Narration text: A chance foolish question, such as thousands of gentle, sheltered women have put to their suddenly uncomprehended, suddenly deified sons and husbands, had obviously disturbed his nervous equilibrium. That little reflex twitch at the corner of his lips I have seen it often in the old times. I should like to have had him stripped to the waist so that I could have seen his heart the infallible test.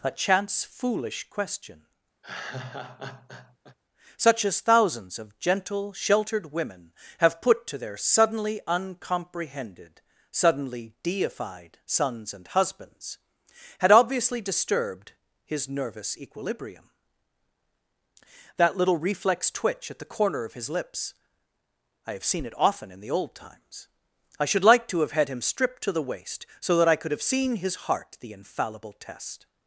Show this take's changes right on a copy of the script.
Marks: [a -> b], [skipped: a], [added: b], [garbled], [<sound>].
A chance foolish question, [laugh] such as thousands of gentle, sheltered women have put to their suddenly uncomprehended, suddenly deified sons and husbands, had obviously disturbed his nervous equilibrium. That little reflex twitch at the corner of his lips I have seen it often in the old times. I should like to have had him stripped to the waist so that I could have seen his heart the infallible test.